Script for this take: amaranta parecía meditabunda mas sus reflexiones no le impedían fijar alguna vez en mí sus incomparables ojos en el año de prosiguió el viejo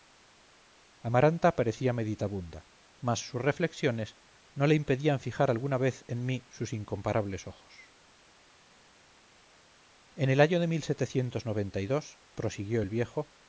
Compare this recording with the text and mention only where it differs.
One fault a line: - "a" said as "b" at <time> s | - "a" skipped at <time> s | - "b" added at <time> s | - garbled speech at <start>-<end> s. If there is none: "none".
none